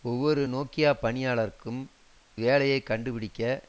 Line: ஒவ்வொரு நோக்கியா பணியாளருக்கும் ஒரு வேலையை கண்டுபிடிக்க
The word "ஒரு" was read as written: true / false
false